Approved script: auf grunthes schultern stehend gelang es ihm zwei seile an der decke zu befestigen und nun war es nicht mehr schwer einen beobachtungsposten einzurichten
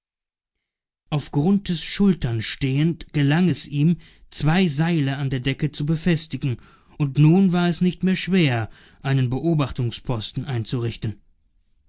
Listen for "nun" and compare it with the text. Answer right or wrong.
right